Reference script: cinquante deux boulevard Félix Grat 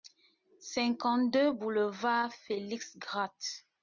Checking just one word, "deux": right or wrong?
right